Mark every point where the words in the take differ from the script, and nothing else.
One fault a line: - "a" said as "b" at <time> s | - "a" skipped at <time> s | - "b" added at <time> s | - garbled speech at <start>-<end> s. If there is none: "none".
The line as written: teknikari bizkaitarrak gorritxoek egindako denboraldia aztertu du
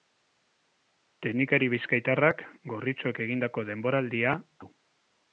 - "aztertu" skipped at 4.4 s